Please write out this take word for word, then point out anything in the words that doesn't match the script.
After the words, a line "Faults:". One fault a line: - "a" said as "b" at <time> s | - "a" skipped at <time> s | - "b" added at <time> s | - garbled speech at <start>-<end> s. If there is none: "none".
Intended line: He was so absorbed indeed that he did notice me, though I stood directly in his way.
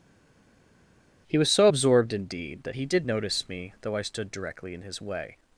He was so absorbed indeed that he did notice me, though I stood directly in his way.
Faults:
none